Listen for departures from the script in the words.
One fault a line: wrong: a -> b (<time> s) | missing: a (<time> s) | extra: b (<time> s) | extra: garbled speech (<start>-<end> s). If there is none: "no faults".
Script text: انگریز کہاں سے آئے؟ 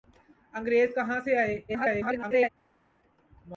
extra: garbled speech (1.7-2.5 s)